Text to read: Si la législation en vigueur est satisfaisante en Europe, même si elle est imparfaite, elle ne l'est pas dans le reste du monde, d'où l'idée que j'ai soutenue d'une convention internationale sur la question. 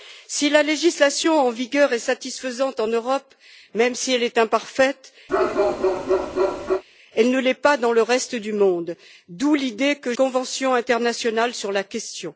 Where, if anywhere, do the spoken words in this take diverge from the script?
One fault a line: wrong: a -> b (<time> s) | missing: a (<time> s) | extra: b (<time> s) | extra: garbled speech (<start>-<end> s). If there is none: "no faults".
missing: j'ai soutenue d'une (10.1 s)